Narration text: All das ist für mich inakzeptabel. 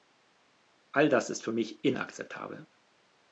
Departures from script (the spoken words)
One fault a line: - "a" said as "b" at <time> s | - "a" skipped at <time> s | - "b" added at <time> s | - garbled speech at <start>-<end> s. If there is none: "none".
none